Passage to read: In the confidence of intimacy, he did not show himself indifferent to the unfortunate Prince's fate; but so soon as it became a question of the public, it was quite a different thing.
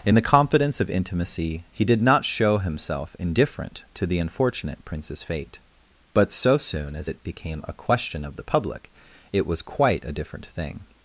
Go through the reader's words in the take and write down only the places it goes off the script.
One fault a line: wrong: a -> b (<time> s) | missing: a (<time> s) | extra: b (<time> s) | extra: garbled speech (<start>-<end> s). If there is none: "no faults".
no faults